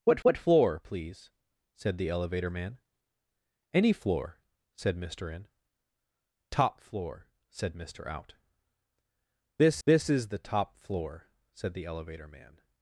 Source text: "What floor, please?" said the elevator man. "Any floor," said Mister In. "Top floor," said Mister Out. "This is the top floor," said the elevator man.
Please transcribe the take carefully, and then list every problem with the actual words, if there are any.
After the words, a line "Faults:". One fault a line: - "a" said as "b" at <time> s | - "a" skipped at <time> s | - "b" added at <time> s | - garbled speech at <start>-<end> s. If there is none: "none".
"What what floor, please?" said the elevator man. "Any floor," said Mister In. "Top floor," said Mister Out. "This this is the top floor," said the elevator man.
Faults:
- "what" added at 0.2 s
- "this" added at 9.9 s